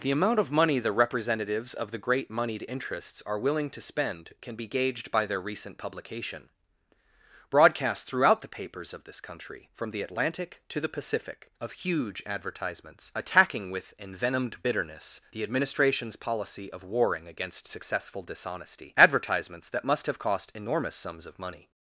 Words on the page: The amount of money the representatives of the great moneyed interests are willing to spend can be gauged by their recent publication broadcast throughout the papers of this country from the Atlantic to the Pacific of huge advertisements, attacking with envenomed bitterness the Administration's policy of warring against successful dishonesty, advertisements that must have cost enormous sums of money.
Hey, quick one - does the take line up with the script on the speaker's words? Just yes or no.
yes